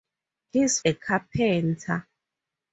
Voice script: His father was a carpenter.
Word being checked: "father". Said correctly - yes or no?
no